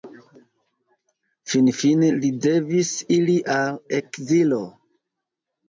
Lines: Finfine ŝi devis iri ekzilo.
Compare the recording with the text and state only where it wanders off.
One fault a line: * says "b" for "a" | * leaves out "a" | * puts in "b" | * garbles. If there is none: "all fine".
* says "li" for "ŝi"
* puts in "al"